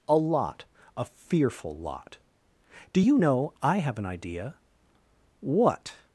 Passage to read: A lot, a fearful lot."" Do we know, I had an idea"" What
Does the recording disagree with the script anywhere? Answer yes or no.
yes